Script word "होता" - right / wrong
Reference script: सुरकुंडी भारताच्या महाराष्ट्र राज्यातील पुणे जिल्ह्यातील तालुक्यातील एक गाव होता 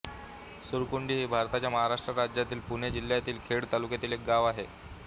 wrong